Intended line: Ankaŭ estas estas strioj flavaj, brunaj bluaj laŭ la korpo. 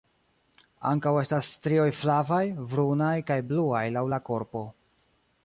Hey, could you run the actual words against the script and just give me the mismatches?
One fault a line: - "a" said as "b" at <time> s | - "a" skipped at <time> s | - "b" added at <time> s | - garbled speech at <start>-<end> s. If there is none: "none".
- "estas" skipped at 1.5 s
- "kaj" added at 3.3 s